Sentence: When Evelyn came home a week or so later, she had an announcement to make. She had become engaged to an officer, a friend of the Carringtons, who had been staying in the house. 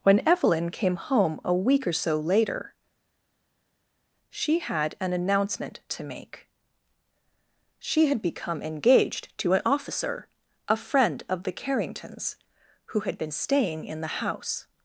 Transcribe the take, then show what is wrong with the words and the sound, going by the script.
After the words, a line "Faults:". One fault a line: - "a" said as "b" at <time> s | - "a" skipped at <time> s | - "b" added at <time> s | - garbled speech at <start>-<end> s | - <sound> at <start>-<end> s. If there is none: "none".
When Evelyn came home a week or so later, she had an announcement to make. She had become engaged to an officer, a friend of the Carringtons, who had been staying in the house.
Faults:
none